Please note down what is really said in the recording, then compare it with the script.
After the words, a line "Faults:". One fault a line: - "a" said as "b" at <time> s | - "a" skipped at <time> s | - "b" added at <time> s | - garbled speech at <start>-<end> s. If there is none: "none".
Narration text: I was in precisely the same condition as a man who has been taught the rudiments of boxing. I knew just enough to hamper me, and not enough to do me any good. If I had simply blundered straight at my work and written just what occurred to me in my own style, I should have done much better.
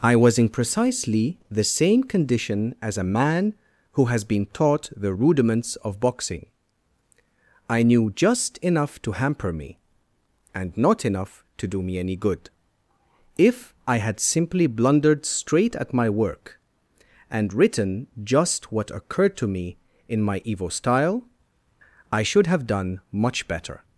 I was in precisely the same condition as a man who has been taught the rudiments of boxing. I knew just enough to hamper me, and not enough to do me any good. If I had simply blundered straight at my work and written just what occurred to me in my evo style, I should have done much better.
Faults:
- "own" said as "evo" at 20.4 s